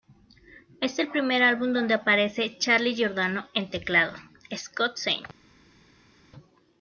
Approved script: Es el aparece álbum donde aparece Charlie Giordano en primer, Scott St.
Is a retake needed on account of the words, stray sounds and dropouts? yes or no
yes